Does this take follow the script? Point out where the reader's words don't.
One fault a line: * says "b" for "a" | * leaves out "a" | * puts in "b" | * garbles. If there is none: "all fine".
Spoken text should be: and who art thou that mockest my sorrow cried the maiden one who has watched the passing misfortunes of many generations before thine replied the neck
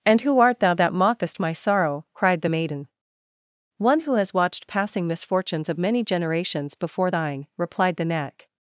* leaves out "the"